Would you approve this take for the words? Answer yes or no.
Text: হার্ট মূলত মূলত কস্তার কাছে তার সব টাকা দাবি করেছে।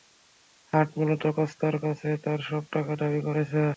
no